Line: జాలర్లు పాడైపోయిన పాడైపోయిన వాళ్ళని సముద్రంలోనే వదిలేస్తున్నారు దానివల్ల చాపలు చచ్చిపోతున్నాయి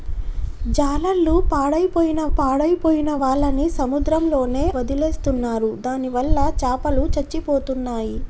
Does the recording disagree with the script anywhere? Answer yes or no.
no